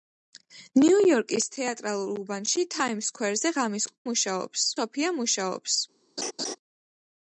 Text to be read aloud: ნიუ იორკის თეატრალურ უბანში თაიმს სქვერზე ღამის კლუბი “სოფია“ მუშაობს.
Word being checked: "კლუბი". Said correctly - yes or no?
no